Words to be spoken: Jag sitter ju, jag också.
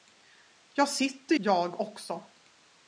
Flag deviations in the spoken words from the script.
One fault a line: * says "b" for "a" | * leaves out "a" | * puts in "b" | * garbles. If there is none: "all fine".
* leaves out "ju"